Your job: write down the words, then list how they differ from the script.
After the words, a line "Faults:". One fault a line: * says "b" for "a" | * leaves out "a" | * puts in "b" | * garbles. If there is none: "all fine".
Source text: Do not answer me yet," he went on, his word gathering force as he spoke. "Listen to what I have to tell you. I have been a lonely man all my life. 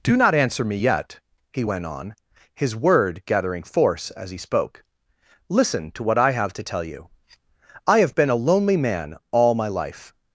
Do not answer me yet," he went on, his word gathering force as he spoke. "Listen to what I have to tell you. I have been a lonely man all my life.
Faults:
all fine